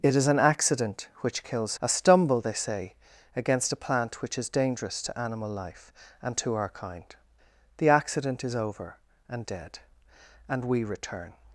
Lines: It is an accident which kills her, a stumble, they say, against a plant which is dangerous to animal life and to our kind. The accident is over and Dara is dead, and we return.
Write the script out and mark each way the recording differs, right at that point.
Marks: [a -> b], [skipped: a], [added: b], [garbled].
It is an accident which kills [skipped: her,] a stumble, they say, against a plant which is dangerous to animal life and to our kind. The accident is over and [skipped: Dara is] dead, and we return.